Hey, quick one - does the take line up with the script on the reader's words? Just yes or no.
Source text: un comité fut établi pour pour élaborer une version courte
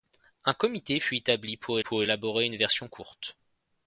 yes